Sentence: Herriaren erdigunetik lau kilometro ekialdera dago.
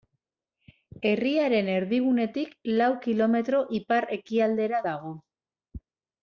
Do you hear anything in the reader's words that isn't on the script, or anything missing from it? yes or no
yes